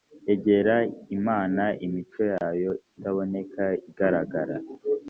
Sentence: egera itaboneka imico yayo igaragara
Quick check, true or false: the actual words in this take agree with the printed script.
false